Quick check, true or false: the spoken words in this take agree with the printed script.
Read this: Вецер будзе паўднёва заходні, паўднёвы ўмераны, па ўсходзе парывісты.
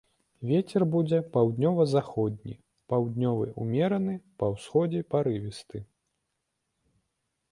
true